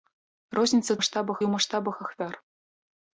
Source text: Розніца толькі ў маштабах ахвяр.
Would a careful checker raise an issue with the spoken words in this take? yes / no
yes